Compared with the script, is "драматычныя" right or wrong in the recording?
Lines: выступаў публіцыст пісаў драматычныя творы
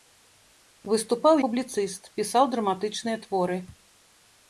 right